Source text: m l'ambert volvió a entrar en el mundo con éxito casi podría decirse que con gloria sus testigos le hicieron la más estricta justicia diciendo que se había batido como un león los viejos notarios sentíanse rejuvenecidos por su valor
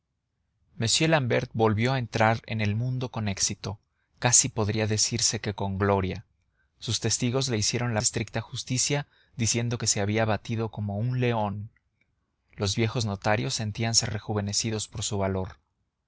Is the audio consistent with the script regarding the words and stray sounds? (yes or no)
no